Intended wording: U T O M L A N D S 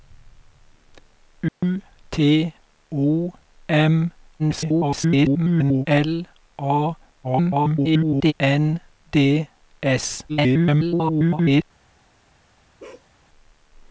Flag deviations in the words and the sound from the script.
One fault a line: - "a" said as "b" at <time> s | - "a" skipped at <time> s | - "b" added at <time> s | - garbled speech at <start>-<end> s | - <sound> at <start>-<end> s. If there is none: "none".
- dropout at 1.5-1.6 s
- garbled speech at 4.4-5.9 s
- garbled speech at 7.2-8.3 s
- garbled speech at 10.3-11.6 s
- bark at 12.8-13.1 s